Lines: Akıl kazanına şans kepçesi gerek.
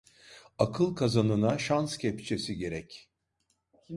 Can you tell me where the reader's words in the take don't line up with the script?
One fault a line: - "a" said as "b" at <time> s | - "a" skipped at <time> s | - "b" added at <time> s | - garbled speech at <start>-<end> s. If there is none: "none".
none